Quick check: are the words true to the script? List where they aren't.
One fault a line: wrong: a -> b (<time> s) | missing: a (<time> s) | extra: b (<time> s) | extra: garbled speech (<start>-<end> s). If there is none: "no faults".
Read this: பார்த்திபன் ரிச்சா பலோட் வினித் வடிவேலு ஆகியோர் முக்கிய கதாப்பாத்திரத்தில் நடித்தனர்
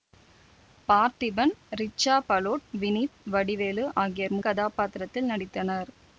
missing: முக்கிய (4.4 s)